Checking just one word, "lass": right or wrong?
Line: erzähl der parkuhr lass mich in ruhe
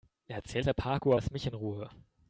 right